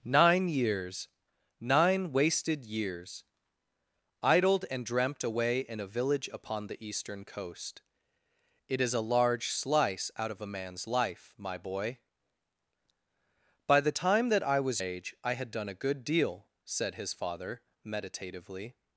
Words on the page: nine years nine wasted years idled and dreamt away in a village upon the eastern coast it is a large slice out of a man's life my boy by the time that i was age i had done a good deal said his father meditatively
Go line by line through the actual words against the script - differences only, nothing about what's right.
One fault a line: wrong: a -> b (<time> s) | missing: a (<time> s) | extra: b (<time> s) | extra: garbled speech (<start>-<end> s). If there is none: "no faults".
no faults